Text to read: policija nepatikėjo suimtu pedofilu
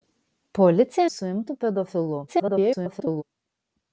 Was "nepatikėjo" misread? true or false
true